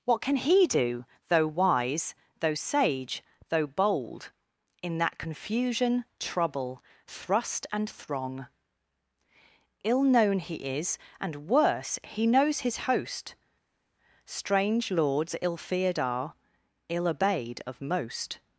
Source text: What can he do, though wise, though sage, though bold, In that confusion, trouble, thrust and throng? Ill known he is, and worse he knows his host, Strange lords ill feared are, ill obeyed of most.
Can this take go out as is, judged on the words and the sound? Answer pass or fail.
pass